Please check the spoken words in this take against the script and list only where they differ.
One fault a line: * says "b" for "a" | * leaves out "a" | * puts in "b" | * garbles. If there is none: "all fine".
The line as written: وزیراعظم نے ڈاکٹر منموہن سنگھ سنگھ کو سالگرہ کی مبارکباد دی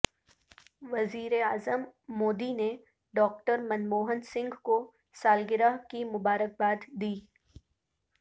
* puts in "مودی"
* leaves out "سنگھ"